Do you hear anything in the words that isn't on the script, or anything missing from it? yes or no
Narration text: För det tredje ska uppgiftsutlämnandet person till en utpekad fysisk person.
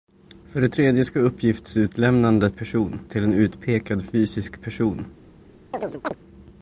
no